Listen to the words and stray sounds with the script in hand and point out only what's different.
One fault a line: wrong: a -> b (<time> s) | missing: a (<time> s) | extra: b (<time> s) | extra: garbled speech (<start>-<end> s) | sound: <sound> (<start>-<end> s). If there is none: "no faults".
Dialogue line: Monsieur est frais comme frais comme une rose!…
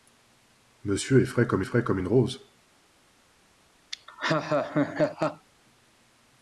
sound: laugh (3.9-5.5 s)